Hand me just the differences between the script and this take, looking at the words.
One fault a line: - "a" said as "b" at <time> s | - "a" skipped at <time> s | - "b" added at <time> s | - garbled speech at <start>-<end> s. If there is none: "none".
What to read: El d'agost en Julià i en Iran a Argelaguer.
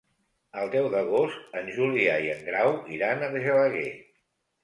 - "deu" added at 0.8 s
- "Grau" added at 2.5 s